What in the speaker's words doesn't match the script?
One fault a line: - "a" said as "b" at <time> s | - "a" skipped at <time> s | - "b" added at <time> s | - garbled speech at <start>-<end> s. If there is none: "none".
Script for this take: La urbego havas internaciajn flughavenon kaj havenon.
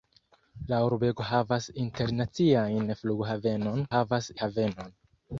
- "kaj" said as "havas" at 3.9 s